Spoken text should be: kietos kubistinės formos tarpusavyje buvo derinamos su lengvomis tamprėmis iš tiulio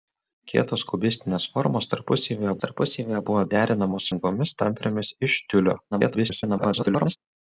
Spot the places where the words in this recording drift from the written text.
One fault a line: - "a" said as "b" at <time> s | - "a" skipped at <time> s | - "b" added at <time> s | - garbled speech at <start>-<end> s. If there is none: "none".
- "tarpusavyje" added at 2.6 s
- "su" skipped at 4.1 s
- garbled speech at 5.9-7.2 s